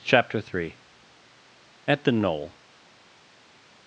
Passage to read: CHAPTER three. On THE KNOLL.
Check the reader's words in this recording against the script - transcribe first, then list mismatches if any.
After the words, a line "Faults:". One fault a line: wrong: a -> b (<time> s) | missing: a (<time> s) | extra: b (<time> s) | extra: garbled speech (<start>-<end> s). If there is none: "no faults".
CHAPTER three. AT THE KNOLL.
Faults:
wrong: On -> AT (1.8 s)